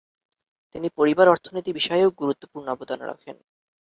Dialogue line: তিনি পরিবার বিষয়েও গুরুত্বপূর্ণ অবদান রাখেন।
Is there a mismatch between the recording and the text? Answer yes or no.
yes